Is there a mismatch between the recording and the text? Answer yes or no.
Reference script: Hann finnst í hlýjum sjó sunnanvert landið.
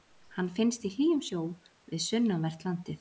yes